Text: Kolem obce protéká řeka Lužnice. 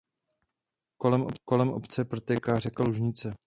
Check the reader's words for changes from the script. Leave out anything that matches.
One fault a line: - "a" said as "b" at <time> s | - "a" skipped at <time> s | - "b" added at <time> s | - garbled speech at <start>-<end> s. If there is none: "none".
none